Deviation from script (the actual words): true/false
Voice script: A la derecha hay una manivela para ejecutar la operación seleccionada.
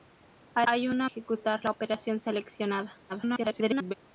true